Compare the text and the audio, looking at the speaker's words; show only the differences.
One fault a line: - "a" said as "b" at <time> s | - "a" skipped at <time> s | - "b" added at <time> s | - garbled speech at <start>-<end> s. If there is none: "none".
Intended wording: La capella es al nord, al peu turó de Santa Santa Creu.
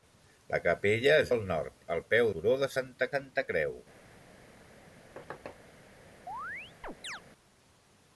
none